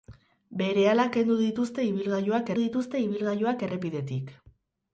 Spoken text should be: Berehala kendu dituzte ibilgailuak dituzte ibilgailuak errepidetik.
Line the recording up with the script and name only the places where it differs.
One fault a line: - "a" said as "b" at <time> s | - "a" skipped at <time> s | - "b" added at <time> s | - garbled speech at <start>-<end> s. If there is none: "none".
none